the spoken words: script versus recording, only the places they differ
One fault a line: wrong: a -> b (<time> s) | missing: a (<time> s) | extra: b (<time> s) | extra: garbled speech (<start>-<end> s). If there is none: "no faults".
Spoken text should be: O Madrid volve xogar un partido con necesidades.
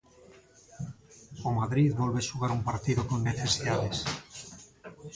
no faults